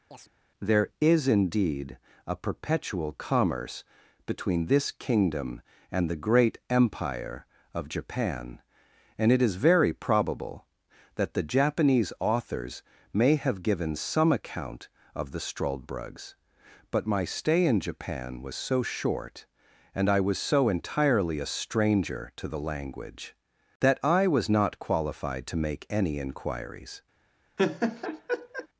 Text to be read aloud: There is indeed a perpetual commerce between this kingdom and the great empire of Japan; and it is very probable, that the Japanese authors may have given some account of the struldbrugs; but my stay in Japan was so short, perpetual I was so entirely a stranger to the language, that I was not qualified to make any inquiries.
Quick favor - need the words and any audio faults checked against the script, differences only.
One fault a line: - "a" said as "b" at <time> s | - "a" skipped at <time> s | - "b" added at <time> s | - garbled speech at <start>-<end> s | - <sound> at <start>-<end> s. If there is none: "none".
- chirp at 0.1-0.3 s
- "perpetual" said as "and" at 20.0 s
- laugh at 27.6-28.7 s